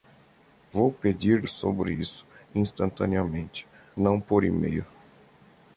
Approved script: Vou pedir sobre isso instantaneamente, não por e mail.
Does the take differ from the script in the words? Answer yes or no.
no